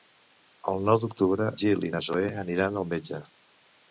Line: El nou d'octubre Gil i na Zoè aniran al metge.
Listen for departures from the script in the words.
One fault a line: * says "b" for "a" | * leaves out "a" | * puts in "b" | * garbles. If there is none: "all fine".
all fine